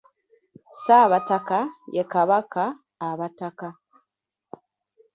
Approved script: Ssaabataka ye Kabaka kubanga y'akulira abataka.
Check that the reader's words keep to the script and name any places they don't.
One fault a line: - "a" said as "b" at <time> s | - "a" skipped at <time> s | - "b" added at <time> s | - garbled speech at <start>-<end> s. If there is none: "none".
- "kubanga y'akulira" skipped at 2.6 s